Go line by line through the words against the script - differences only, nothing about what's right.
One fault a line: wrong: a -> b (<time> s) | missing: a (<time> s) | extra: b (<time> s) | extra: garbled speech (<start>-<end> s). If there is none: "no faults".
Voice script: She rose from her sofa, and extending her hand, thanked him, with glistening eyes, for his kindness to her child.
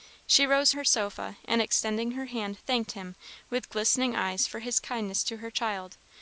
missing: from (0.7 s)